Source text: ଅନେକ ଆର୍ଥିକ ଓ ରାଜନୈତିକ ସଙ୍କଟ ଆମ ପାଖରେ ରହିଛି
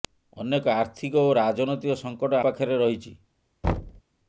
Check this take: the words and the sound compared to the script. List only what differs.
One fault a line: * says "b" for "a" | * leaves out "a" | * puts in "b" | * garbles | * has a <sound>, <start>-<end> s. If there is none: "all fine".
* leaves out "ଆମ"
* has a thud, 3.6-4.0 s